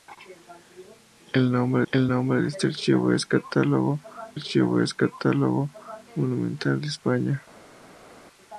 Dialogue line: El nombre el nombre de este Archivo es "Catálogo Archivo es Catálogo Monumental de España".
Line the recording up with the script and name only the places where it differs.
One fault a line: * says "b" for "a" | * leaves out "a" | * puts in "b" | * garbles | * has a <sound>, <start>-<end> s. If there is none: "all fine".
all fine